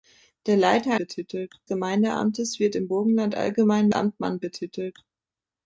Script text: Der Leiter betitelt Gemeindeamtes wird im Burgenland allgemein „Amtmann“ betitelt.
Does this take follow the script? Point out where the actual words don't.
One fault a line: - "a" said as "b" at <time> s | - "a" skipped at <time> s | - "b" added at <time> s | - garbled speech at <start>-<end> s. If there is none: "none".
none